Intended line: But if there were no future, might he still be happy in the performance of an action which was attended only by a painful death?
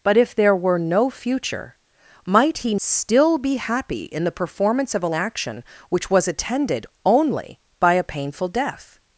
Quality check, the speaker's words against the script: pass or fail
pass